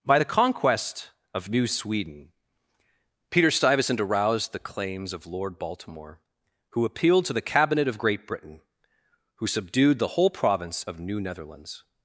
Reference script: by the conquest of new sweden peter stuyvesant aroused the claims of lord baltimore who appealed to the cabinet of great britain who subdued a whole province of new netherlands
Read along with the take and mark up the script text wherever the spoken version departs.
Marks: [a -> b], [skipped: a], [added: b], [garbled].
by the conquest of new sweden peter stuyvesant aroused the claims of lord baltimore who appealed to the cabinet of great britain who subdued [a -> the] whole province of new netherlands